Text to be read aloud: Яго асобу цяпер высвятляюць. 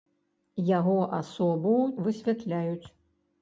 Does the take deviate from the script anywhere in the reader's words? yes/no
yes